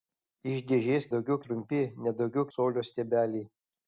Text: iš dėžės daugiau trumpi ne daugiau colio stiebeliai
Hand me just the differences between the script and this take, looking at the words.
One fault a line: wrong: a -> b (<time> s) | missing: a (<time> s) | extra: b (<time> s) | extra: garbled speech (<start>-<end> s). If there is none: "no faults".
no faults